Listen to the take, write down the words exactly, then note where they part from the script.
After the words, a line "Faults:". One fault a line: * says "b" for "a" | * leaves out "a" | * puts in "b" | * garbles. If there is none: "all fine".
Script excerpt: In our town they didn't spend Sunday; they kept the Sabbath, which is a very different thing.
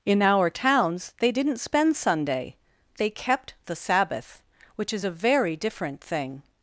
In our towns they didn't spend Sunday; they kept the Sabbath, which is a very different thing.
Faults:
* says "towns" for "town"